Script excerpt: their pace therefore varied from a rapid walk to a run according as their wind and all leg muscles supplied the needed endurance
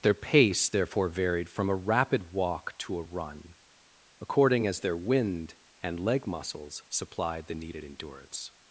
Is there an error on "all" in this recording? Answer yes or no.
yes